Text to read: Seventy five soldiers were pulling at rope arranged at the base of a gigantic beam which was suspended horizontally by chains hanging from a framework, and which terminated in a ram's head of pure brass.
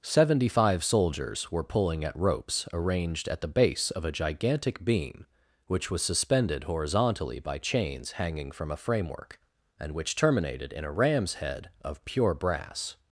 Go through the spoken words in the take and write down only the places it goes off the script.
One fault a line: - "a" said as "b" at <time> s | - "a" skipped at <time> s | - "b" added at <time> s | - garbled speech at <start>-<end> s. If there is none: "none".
- "rope" said as "ropes" at 2.2 s